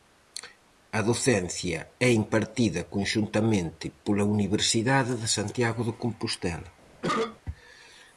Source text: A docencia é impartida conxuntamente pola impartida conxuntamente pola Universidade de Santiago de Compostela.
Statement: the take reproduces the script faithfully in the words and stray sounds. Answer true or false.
false